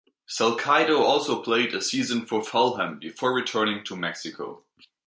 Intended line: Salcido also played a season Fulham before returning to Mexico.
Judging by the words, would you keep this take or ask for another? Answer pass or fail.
fail